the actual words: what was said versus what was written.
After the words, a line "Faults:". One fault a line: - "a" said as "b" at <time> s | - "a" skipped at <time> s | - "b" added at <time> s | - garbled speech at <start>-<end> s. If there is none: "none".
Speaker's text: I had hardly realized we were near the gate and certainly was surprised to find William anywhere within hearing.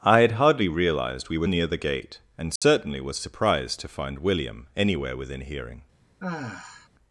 I had hardly realized we were near the gate and certainly was surprised to find William anywhere within hearing.
Faults:
none